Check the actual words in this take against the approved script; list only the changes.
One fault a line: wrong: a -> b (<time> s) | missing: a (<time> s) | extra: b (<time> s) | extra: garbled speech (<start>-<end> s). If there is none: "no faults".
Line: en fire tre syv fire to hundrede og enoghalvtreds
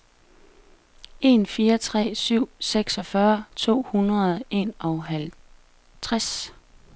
wrong: fire -> seksogfyrre (2.6 s)